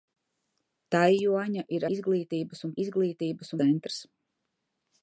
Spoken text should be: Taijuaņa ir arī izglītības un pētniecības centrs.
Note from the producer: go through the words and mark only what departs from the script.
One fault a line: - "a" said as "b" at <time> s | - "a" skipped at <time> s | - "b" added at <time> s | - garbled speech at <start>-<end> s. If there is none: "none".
- "arī" skipped at 1.9 s
- "pētniecības" said as "izglītības" at 2.8 s